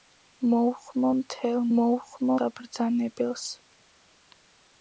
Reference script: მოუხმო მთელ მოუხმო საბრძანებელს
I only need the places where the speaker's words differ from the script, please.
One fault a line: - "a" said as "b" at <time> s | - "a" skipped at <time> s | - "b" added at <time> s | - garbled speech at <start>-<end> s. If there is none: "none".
none